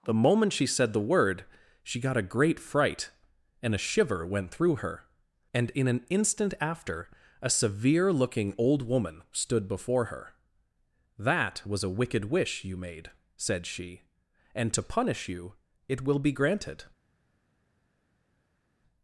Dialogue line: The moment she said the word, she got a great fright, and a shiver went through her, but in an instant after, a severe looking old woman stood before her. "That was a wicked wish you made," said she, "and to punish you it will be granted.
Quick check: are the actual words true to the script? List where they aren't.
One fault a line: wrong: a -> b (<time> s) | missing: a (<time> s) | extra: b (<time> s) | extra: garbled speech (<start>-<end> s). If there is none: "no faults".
wrong: but -> and (5.5 s)